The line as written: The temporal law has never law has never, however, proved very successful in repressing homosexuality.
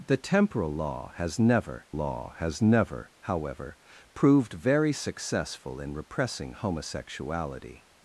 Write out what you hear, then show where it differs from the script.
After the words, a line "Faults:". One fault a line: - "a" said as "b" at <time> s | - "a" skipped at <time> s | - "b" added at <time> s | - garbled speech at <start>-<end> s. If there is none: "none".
The temporal law has never law has never, however, proved very successful in repressing homosexuality.
Faults:
none